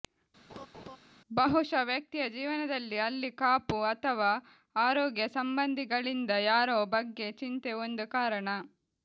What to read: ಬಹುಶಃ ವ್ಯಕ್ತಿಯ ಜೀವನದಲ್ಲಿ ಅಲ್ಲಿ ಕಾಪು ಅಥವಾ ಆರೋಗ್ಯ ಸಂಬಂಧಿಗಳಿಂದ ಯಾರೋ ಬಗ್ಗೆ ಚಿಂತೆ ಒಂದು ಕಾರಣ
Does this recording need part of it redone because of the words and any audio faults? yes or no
yes